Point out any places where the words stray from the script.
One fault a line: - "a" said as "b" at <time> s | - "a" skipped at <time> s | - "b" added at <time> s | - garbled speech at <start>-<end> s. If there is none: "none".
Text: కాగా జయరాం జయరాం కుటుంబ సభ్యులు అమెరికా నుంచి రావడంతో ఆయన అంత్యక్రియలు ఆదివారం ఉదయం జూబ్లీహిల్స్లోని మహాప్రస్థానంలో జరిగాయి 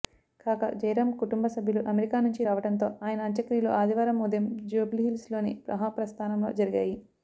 - "జయరాం" skipped at 1.1 s